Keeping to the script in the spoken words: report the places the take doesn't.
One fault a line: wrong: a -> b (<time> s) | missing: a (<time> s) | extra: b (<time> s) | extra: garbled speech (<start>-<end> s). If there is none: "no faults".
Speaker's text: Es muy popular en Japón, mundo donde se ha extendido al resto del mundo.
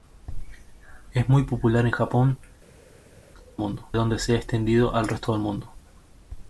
no faults